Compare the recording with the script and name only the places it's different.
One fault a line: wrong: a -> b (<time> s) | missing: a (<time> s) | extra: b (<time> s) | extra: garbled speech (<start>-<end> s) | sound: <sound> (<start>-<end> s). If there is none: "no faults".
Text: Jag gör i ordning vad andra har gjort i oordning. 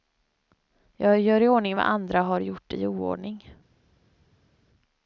no faults